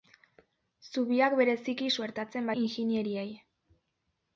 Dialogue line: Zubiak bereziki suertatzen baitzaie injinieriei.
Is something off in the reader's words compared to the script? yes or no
yes